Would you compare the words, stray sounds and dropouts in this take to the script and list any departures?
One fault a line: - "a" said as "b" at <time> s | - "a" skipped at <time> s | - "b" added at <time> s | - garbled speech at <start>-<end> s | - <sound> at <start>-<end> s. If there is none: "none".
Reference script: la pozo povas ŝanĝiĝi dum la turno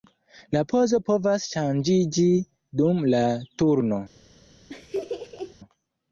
- laugh at 4.7-5.6 s